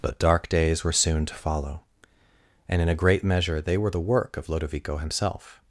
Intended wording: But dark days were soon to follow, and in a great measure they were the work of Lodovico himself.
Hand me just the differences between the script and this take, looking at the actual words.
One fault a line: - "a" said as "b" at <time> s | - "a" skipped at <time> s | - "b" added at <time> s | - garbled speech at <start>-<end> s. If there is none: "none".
none